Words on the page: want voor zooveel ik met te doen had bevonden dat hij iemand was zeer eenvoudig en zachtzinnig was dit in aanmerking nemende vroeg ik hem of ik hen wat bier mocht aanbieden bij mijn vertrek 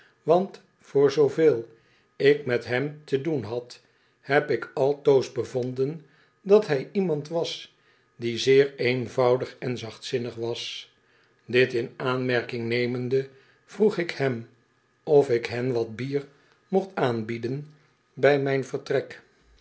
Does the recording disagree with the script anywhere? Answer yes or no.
yes